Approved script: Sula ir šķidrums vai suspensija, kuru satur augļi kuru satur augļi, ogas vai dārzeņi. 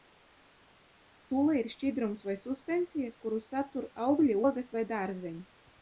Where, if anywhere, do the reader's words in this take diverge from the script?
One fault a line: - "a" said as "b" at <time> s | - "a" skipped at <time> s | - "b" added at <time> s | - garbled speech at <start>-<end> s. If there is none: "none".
- "kuru satur augļi" skipped at 4.4 s